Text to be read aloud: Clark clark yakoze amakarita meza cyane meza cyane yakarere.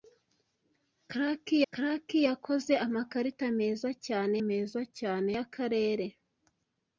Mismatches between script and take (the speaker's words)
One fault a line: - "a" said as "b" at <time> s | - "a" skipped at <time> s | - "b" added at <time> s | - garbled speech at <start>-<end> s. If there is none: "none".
none